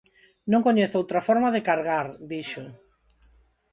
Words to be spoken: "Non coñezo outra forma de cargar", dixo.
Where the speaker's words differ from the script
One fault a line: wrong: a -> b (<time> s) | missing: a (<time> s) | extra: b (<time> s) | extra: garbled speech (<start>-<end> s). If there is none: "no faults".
no faults